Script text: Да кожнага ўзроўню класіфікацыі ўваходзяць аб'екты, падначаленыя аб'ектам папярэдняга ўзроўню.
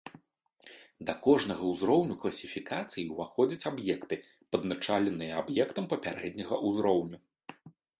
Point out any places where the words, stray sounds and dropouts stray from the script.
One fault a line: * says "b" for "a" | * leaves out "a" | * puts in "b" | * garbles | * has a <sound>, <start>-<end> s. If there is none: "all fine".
all fine